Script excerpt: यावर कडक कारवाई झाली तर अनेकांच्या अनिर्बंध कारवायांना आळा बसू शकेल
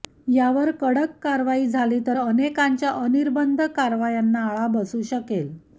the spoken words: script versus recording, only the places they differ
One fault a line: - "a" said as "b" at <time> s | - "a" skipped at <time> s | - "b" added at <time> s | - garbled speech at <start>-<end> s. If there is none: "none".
none